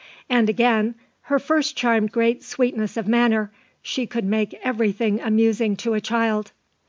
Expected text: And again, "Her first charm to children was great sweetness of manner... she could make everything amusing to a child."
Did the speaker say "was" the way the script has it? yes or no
no